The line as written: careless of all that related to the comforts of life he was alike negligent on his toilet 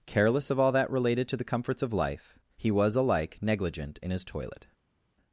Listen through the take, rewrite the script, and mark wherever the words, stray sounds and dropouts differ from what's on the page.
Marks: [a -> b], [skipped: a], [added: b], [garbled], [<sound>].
careless of all that related to the comforts of life he was alike negligent [on -> in] his toilet